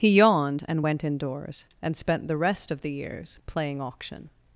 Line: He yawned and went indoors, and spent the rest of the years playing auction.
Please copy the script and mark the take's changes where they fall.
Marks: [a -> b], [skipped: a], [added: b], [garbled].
He yawned and went indoors, and spent the rest of the years playing auction.